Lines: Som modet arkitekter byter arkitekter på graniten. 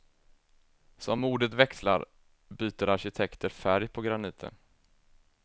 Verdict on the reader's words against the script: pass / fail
fail